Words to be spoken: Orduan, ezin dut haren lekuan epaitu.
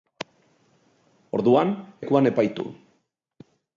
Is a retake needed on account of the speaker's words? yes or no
yes